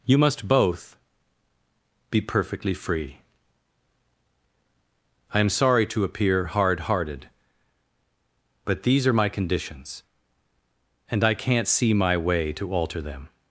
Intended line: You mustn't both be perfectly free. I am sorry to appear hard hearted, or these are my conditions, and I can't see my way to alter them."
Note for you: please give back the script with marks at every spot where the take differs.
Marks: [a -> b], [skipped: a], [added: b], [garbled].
You [mustn't -> must] both be perfectly free. I am sorry to appear hard hearted, [or -> but] these are my conditions, and I can't see my way to alter them."